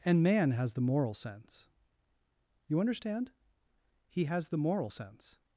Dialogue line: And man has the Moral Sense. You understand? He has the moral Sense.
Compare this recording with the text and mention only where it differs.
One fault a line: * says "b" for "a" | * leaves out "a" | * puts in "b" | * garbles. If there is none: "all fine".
all fine